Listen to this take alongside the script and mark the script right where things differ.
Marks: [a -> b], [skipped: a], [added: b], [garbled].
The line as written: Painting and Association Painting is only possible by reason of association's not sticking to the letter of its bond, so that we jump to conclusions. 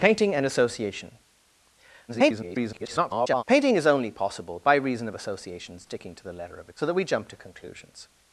Painting and Association [garbled] Painting is only possible by reason of association's [skipped: not] sticking to the letter of [skipped: its bond,] so that we jump to conclusions.